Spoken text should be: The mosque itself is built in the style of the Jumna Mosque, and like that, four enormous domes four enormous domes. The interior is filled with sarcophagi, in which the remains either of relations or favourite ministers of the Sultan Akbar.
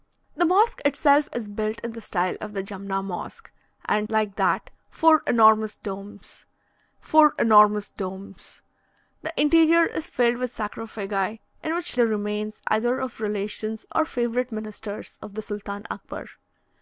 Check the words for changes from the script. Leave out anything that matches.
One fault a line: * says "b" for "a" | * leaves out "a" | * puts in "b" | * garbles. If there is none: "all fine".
all fine